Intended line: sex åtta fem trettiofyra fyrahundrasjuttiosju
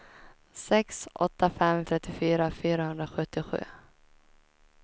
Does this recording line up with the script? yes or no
yes